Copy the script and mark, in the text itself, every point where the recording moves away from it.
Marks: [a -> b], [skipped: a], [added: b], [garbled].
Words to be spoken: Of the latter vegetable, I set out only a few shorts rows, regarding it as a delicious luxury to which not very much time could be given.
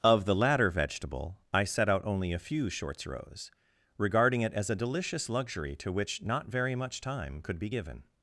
Of the latter vegetable, I set out only a few shorts rows, regarding it as a delicious luxury to which not very much time could be given.